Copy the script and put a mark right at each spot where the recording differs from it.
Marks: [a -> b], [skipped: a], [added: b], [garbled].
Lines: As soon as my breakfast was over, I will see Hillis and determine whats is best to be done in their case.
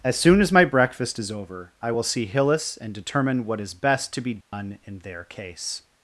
As soon as my breakfast [was -> is] over, I will see Hillis and determine [whats -> what] is best to be done in their case.